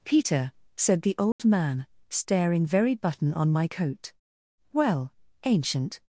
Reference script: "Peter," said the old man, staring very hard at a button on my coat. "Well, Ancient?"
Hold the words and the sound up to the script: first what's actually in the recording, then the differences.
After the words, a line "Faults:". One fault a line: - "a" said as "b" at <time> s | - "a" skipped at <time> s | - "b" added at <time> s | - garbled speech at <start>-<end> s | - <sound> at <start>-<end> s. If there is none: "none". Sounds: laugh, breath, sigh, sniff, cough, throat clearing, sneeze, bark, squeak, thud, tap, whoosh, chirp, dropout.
"Peter," said the old man, staring very button on my coat. "Well, Ancient?"
Faults:
- dropout at 1.3-1.4 s
- "hard at a" skipped at 2.9 s